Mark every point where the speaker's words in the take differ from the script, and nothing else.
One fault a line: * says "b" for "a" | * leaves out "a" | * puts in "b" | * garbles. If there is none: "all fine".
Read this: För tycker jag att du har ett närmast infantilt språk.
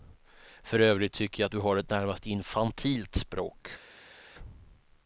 * puts in "övrigt"